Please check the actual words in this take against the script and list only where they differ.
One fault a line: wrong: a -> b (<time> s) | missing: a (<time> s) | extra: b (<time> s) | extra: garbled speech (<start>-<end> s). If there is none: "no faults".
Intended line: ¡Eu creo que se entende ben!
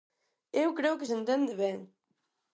no faults